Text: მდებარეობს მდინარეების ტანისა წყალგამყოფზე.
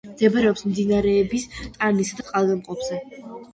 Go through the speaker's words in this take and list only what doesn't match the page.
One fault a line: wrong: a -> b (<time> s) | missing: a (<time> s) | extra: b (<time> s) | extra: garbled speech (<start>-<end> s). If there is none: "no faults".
no faults